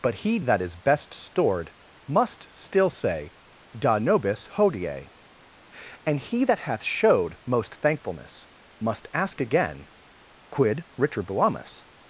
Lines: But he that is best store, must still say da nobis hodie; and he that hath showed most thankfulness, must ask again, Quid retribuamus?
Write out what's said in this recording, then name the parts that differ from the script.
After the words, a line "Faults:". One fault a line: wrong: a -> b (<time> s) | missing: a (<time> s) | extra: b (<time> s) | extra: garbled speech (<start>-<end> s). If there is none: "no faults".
But he that is best stored, must still say da nobis hodie; and he that hath showed most thankfulness, must ask again, Quid retribuamus?
Faults:
wrong: store -> stored (1.1 s)